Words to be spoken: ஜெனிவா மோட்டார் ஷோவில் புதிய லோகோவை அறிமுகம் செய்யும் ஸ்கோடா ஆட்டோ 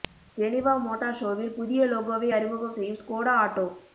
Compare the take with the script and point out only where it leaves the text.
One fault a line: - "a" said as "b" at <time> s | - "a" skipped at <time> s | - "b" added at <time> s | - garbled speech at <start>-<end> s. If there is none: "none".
none